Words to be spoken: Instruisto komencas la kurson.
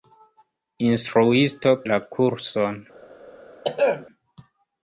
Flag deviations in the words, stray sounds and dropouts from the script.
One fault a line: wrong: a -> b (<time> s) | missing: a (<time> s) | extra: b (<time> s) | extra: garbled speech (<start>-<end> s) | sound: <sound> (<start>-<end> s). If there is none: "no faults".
missing: komencas (1.8 s)
sound: throat clearing (3.6-4.1 s)